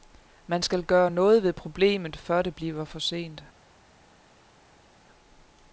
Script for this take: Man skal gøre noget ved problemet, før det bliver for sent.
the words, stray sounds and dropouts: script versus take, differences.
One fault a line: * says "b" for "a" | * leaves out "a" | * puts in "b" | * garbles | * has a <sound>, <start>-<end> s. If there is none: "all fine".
all fine